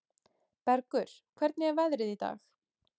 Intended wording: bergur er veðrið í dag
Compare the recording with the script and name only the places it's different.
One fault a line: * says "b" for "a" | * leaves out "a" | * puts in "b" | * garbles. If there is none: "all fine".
* puts in "hvernig"